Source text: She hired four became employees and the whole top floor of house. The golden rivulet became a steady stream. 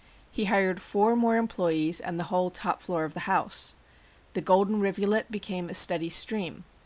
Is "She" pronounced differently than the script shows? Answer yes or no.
yes